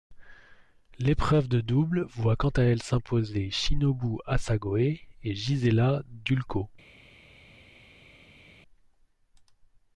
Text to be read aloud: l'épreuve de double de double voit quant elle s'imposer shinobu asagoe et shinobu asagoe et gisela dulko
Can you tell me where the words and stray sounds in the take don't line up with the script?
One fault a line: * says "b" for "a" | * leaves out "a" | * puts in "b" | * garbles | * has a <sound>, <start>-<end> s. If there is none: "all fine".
* leaves out "de double"
* puts in "à"
* leaves out "shinobu asagoe et"